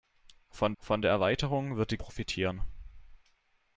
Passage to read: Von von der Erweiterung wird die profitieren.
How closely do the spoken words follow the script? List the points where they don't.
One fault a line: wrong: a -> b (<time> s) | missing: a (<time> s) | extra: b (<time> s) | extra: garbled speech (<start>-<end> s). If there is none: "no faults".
no faults